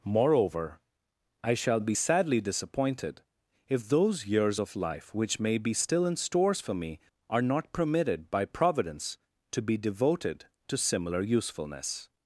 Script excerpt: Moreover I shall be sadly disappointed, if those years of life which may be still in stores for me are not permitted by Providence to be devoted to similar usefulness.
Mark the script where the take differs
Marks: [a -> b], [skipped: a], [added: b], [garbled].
Moreover I shall be sadly disappointed, if those years of life which may be still in stores for me are not permitted by Providence to be devoted to similar usefulness.